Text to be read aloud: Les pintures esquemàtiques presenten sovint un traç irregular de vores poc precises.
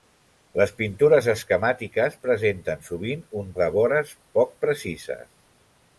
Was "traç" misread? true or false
true